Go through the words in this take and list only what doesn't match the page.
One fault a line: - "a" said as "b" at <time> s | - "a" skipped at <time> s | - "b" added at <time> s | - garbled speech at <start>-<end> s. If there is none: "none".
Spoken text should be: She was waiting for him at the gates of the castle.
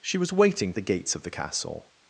- "for him at" skipped at 0.7 s